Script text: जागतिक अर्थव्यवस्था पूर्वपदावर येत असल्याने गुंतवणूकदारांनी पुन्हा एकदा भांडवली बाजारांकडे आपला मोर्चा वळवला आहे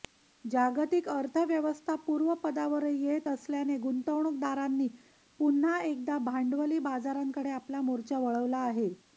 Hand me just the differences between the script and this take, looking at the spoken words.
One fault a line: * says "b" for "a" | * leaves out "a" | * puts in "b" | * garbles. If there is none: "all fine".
all fine